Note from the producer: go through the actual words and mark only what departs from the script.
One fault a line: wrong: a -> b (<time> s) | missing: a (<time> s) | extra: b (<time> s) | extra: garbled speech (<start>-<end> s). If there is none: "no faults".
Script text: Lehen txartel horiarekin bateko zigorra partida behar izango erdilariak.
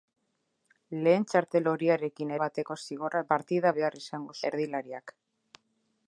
no faults